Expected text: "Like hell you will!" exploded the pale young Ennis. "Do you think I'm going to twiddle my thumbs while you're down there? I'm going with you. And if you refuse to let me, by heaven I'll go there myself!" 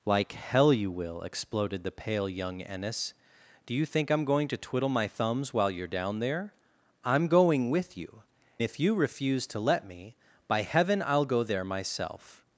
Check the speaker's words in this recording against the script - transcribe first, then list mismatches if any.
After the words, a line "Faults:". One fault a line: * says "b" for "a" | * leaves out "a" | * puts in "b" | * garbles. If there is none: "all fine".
"Like hell you will!" exploded the pale young Ennis. "Do you think I'm going to twiddle my thumbs while you're down there? I'm going with you. If you refuse to let me, by heaven I'll go there myself!"
Faults:
* leaves out "And"